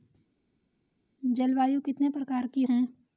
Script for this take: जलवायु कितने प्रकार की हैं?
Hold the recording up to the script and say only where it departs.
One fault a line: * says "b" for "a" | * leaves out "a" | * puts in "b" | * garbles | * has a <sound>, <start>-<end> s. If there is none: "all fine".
all fine